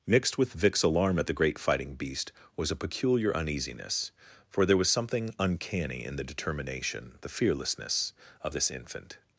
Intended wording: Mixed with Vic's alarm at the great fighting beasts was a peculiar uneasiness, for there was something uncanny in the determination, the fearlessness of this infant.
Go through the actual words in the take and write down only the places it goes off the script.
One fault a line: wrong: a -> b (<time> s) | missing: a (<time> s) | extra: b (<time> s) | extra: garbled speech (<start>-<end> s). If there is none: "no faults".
wrong: beasts -> beast (1.9 s)